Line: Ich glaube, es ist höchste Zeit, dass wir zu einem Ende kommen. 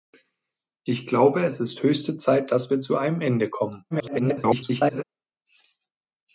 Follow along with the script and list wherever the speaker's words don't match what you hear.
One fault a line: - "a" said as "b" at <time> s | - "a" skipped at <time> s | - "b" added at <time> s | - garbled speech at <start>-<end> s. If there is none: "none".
- garbled speech at 3.9-5.0 s